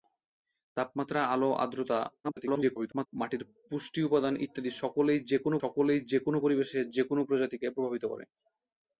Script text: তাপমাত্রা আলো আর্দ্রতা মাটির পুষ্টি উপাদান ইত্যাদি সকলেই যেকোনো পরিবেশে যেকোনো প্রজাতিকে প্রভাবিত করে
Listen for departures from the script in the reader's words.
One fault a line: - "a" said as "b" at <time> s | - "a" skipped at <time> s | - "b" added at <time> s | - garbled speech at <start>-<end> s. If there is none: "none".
- garbled speech at 2.2-3.1 s
- "সকলেই যেকোনো" added at 5.6 s